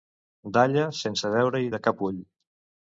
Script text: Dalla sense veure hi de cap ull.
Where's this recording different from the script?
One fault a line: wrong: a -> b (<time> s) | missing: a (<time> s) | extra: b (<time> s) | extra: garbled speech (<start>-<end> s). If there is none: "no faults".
no faults